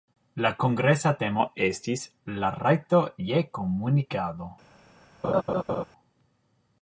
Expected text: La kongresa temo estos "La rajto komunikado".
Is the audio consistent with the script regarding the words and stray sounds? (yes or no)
no